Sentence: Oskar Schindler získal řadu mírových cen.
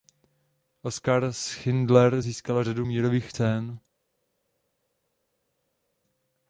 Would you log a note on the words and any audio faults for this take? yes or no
no